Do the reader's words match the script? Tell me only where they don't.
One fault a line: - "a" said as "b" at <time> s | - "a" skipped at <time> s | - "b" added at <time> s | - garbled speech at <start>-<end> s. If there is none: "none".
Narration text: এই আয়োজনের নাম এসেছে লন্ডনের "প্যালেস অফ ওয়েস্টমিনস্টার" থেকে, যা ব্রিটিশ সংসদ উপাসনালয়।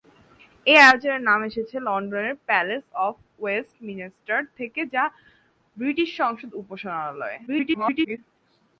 - garbled speech at 7.5-8.2 s